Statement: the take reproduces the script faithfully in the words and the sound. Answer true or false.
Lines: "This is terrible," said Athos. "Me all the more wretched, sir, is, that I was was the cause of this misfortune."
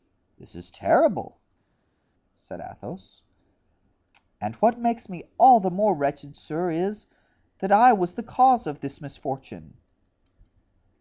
false